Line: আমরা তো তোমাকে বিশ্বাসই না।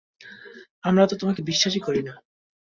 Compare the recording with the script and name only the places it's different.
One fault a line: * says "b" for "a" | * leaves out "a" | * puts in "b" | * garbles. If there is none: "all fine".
* puts in "করি"